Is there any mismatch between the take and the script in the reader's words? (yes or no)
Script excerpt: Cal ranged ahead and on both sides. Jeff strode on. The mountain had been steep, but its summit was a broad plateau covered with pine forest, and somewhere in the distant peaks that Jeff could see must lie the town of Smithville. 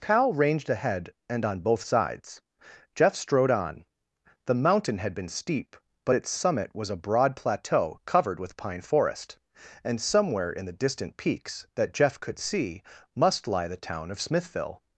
no